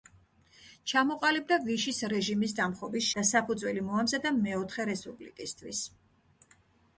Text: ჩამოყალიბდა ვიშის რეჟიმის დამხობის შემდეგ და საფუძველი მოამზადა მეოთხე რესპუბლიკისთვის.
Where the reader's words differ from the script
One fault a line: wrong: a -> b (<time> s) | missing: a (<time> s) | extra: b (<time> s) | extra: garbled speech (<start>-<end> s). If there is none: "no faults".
missing: შემდეგ (3.1 s)